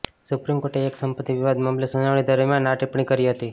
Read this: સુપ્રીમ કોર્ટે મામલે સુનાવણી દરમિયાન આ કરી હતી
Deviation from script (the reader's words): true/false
true